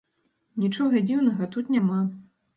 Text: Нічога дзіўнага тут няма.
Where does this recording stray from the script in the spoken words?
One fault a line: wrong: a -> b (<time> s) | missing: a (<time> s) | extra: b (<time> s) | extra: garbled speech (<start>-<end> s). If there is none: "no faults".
no faults